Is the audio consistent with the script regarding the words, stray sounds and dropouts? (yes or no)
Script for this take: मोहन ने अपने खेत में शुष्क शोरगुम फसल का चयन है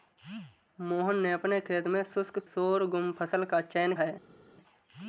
yes